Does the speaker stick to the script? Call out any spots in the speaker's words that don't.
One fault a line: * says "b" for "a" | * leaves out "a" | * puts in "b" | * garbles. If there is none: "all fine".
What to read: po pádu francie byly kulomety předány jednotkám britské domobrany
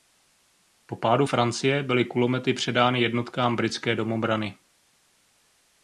all fine